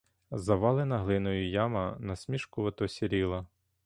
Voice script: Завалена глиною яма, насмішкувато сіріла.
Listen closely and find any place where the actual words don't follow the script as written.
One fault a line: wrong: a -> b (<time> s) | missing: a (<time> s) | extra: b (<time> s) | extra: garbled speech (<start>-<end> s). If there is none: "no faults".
no faults